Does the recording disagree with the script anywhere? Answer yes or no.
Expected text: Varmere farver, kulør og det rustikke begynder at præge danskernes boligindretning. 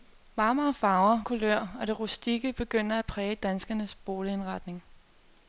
no